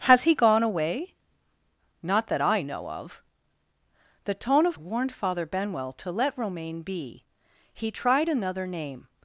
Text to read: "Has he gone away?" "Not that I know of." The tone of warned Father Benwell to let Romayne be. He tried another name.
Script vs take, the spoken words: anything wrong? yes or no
no